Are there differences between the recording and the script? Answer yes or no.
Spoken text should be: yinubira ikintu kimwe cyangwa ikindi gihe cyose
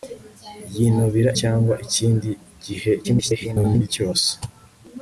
yes